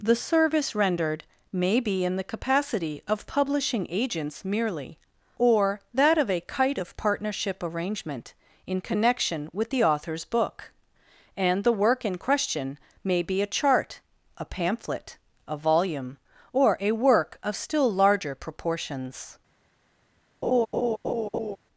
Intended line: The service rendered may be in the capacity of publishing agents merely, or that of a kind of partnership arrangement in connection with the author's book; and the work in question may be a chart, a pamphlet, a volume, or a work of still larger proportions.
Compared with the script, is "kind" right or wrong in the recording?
wrong